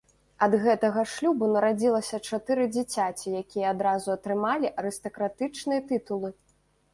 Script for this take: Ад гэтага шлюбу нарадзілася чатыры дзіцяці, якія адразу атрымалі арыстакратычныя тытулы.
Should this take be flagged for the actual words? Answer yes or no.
no